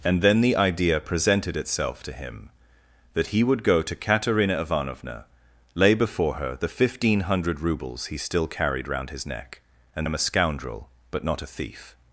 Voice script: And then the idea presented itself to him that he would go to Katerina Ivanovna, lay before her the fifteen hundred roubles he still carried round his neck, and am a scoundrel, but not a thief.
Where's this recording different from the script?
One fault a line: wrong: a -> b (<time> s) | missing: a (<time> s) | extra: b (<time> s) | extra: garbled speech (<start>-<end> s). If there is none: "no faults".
no faults